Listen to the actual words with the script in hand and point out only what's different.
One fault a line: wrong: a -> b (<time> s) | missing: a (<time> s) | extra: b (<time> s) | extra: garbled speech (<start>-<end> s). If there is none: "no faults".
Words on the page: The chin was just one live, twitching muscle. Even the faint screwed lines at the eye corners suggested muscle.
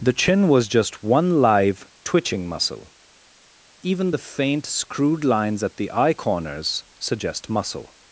wrong: suggested -> suggest (7.0 s)